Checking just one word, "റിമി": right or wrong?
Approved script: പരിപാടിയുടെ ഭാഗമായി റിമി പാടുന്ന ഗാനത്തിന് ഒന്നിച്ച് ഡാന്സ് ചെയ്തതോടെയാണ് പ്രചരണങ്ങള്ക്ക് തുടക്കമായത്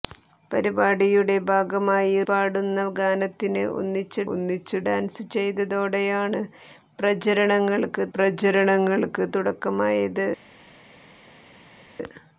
wrong